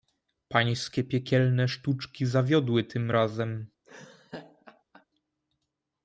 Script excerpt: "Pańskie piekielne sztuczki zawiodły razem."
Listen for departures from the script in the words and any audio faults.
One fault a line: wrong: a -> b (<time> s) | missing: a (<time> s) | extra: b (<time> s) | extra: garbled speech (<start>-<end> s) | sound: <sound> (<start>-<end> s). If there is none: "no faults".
extra: tym (2.8 s)
sound: laugh (3.8-5.1 s)